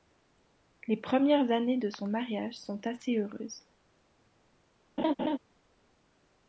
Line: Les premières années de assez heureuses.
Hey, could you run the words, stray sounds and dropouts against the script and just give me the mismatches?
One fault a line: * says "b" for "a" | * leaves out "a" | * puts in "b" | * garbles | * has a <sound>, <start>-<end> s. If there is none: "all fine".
* puts in "son mariage sont"
* has a laugh, 5.0-5.4 s